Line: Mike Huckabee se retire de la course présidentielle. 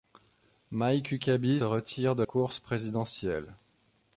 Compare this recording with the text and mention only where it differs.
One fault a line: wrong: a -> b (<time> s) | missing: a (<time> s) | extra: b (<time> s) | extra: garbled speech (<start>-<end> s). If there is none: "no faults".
missing: se (1.6 s)
missing: la (2.2 s)